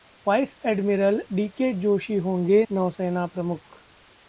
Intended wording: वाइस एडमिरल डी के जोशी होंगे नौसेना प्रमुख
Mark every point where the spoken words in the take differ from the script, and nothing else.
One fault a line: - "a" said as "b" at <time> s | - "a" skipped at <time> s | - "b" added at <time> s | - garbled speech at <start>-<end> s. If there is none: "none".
none